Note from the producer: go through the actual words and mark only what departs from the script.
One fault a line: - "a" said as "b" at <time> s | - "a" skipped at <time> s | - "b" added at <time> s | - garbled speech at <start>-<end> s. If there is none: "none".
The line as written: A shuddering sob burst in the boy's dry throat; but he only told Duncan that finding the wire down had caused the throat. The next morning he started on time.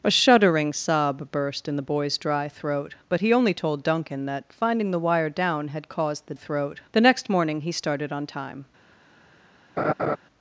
none